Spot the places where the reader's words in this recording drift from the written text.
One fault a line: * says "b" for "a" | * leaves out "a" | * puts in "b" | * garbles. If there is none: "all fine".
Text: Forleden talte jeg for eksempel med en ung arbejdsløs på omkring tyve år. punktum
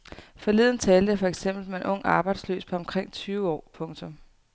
all fine